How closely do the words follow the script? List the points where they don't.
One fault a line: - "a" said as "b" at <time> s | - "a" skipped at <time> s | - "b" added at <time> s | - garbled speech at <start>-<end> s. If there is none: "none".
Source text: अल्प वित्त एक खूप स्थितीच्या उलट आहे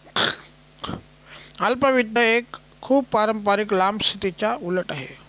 - "पारंपारिक लांब" added at 3.1 s